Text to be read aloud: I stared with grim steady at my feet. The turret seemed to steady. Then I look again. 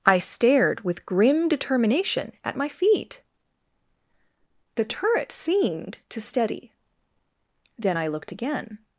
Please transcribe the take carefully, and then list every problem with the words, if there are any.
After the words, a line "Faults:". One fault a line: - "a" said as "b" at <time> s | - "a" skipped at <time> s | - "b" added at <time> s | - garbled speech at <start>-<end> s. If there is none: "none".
I stared with grim determination at my feet. The turret seemed to steady. Then I looked again.
Faults:
- "steady" said as "determination" at 1.5 s
- "look" said as "looked" at 8.1 s